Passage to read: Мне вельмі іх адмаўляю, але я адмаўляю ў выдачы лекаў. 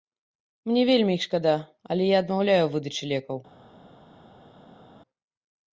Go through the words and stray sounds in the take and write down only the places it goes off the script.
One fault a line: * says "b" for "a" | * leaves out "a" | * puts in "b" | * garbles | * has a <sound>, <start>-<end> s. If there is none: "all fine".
* says "шкада" for "адмаўляю"